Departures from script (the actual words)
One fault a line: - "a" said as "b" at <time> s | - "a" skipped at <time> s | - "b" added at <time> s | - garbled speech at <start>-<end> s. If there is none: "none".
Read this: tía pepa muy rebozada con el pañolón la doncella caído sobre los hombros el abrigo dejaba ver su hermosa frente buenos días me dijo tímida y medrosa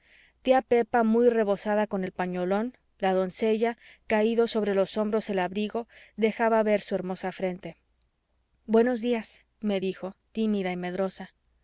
none